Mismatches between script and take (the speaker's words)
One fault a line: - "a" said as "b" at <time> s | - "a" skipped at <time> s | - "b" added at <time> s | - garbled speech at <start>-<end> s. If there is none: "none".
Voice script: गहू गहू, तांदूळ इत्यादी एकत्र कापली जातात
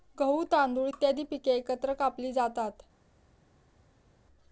- "गहू" skipped at 0.4 s
- "पिके" added at 1.2 s